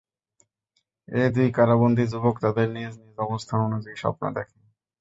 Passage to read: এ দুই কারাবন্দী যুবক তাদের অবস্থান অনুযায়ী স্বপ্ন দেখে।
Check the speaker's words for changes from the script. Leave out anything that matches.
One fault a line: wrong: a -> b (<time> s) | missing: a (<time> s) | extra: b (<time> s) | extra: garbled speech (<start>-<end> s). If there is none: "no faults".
extra: নিজ নিজ (2.7 s)